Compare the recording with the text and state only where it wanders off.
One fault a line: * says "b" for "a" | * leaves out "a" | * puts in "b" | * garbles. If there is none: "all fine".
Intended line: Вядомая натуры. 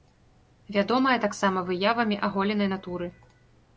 * puts in "таксама выявамі аголенай"